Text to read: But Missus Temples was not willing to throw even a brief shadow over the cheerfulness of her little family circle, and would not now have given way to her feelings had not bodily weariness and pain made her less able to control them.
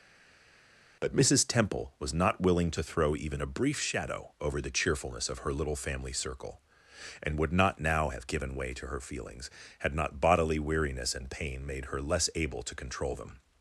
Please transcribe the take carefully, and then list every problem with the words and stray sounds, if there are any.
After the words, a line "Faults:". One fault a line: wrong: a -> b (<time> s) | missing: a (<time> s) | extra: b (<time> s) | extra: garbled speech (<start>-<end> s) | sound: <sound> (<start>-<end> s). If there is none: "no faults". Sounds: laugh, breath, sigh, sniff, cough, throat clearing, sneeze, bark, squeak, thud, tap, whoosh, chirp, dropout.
But Missus Temple was not willing to throw even a brief shadow over the cheerfulness of her little family circle, and would not now have given way to her feelings had not bodily weariness and pain made her less able to control them.
Faults:
wrong: Temples -> Temple (1.4 s)